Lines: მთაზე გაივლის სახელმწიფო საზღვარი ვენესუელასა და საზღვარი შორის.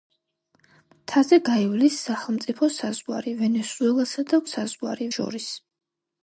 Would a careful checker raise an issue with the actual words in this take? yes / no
no